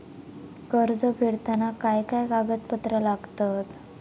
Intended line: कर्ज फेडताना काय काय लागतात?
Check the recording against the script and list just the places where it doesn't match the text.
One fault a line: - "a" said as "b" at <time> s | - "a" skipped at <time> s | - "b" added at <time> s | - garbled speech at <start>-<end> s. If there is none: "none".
- "कागदपत्रा" added at 2.3 s